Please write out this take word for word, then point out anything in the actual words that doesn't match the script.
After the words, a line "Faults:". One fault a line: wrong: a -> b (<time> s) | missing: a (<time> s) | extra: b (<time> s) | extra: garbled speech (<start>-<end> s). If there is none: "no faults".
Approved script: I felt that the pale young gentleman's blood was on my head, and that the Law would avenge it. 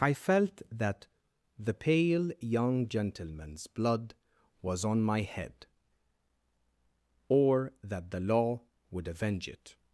I felt that the pale young gentleman's blood was on my head, or that the Law would avenge it.
Faults:
wrong: and -> or (7.3 s)